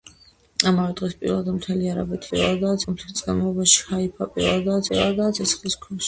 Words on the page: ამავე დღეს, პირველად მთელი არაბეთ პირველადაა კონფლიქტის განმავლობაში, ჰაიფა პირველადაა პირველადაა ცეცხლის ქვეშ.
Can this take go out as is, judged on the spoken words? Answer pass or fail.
pass